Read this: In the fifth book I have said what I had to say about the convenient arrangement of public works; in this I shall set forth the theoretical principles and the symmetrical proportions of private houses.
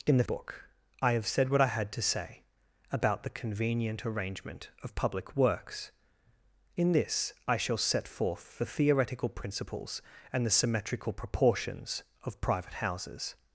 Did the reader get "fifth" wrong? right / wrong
wrong